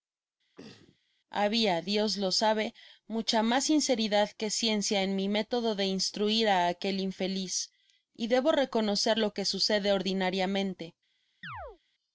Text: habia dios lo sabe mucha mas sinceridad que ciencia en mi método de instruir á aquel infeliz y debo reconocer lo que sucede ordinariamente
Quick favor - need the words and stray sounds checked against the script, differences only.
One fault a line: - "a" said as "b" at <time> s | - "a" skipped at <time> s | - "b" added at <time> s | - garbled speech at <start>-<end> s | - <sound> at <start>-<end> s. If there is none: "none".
- throat clearing at 0.6-1.0 s
- chirp at 11.4-11.8 s